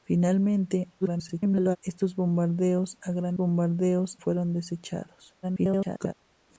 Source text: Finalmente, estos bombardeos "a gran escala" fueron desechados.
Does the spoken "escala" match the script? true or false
false